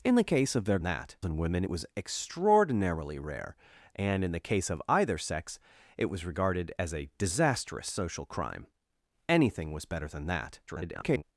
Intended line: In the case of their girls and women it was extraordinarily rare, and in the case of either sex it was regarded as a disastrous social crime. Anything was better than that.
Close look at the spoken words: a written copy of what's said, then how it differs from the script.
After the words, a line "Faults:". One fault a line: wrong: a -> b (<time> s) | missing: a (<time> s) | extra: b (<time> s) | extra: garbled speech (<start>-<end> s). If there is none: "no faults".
In the case of their that and women it was extraordinarily rare, and in the case of either sex it was regarded as a disastrous social crime. Anything was better than that. [garbled]
Faults:
wrong: girls -> that (0.8 s)
extra: garbled speech (10.7-11.2 s)